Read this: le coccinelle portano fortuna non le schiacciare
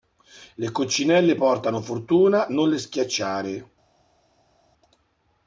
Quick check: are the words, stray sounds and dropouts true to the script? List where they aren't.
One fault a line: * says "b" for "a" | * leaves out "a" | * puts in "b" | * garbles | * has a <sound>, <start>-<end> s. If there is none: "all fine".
all fine